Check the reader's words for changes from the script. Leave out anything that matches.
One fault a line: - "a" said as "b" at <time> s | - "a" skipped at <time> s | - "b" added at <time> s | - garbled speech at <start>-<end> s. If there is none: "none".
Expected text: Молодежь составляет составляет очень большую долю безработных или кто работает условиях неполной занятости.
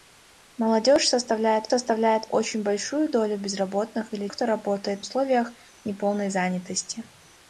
none